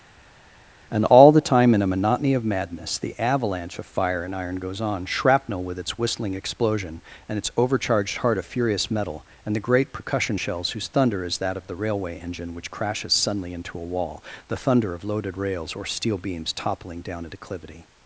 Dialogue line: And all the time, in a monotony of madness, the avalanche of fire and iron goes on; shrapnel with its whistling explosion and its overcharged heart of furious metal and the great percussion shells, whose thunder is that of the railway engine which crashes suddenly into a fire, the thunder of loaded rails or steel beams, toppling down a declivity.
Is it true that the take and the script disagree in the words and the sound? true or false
true